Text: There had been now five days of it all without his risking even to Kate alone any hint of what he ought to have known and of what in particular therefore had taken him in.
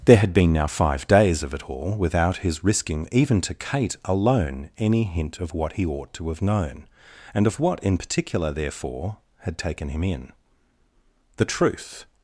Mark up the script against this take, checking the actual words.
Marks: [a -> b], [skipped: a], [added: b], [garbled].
There had been now five days of it all without his risking even to Kate alone any hint of what he ought to have known and of what in particular therefore had taken him in. [added: The truth]